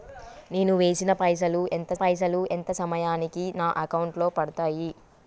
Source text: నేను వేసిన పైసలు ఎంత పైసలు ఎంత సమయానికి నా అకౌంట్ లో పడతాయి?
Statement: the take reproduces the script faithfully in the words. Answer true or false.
true